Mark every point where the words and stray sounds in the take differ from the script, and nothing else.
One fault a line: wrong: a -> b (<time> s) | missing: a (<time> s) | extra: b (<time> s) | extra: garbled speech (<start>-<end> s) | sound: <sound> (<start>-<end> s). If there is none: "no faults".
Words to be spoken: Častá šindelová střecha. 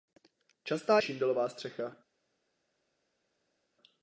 no faults